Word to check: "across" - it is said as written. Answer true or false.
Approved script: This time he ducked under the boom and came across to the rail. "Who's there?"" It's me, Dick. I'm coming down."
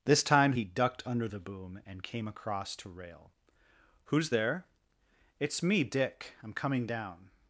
true